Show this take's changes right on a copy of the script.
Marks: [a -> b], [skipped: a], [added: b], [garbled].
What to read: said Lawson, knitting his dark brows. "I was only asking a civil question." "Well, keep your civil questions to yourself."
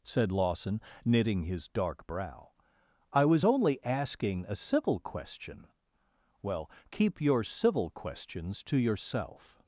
said Lawson, knitting his dark [brows. -> brow] "I was only asking a civil question." "Well, keep your civil questions to yourself."